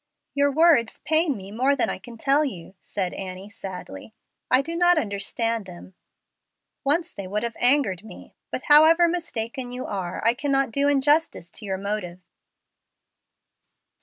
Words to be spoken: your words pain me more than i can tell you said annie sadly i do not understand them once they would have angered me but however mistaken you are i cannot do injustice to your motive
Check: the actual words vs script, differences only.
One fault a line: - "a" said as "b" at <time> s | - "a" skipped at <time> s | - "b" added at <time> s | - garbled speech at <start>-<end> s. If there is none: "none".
none